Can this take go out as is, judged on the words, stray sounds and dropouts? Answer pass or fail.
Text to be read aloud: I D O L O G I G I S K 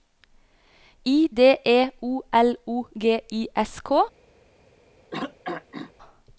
fail